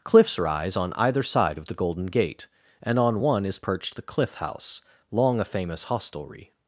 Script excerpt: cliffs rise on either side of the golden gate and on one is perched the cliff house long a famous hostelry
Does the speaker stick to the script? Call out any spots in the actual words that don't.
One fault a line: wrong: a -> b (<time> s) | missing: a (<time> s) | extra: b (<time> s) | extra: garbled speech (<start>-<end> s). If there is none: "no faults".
no faults